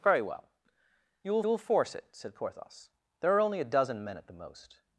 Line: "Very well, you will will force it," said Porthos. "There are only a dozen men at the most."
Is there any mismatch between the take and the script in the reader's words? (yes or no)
no